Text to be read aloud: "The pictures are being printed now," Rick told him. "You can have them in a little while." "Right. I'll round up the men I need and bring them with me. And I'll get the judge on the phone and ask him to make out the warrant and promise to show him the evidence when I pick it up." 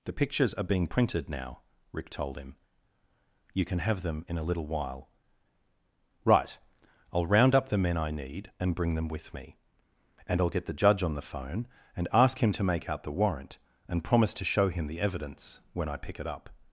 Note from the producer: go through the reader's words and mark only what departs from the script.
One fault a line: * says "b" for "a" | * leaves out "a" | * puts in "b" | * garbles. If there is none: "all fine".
all fine